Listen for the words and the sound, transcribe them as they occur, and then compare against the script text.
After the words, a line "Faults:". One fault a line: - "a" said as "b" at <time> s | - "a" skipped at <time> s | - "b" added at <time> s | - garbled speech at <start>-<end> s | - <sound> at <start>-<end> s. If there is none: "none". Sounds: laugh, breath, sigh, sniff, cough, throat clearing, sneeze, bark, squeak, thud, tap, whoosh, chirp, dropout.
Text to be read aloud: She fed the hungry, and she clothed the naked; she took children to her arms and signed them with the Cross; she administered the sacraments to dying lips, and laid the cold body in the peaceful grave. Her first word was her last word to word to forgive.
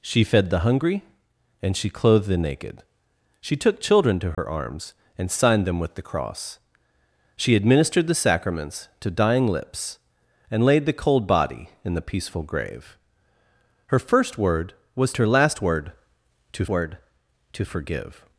She fed the hungry, and she clothed the naked; she took children to her arms and signed them with the Cross; she administered the sacraments to dying lips, and laid the cold body in the peaceful grave. Her first word was her last word to word to forgive.
Faults:
- dropout at 4.3-4.4 s